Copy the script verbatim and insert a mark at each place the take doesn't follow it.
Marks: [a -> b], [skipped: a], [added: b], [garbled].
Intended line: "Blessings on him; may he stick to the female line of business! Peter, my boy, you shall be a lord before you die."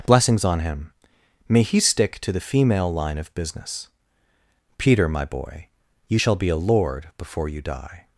"Blessings on him; may he stick to the female line of business! Peter, my boy, you shall be a lord before you die."